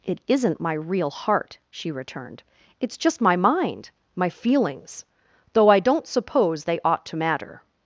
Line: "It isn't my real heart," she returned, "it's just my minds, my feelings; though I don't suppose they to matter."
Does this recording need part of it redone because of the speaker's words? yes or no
yes